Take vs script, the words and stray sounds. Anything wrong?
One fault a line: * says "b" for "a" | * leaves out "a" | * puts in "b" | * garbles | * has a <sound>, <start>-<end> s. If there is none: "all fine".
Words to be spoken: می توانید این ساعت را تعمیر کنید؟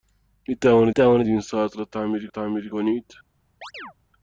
* puts in "توانید"
* puts in "تعمیر"
* has a chirp, 3.6-3.9 s